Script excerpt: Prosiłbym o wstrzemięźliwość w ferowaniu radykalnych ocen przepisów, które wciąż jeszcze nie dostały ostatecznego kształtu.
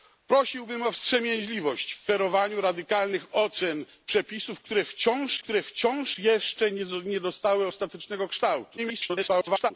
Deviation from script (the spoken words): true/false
true